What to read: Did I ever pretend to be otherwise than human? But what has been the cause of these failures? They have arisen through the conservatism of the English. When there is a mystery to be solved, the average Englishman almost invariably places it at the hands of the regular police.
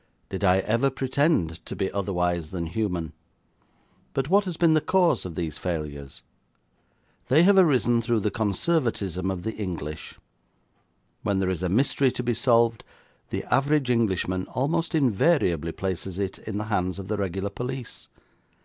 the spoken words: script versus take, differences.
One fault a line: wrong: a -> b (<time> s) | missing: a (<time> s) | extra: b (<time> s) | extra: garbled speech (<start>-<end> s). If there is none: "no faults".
wrong: at -> in (16.4 s)